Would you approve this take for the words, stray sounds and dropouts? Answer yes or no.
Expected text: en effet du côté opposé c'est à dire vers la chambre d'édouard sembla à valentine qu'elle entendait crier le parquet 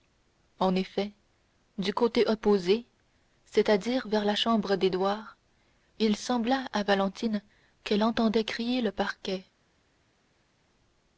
no